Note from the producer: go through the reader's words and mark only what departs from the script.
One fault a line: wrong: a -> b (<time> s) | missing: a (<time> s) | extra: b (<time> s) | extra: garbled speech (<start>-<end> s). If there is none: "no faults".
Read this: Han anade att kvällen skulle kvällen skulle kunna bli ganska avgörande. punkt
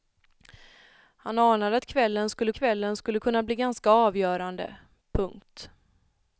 no faults